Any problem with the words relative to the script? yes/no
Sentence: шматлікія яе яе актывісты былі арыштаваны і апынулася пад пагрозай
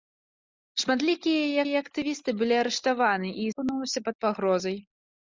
no